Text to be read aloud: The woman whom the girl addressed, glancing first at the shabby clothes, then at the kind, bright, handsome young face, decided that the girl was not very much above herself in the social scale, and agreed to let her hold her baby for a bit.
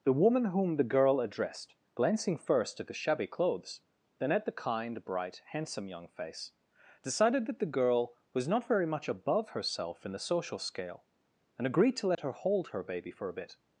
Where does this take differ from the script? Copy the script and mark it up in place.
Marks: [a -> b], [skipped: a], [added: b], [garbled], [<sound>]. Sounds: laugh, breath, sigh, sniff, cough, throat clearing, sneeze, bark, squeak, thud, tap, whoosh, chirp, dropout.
The woman whom the girl addressed, glancing first at the shabby clothes, then at the kind, bright, handsome young face, decided that the girl was not very much above herself in the social scale, and agreed to let [dropout] her hold her baby for a bit.